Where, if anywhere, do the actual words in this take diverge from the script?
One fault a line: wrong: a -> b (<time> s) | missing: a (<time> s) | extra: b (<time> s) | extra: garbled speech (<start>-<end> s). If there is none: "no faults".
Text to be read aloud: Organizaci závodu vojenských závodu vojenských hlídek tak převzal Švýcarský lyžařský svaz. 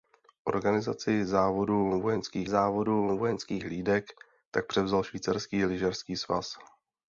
no faults